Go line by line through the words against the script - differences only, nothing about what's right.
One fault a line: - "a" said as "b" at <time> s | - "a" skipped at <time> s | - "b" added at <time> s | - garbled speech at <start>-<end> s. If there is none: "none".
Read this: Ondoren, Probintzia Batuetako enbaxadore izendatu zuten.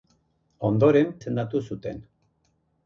- "Probintzia Batuetako enbaxadore" skipped at 1.1 s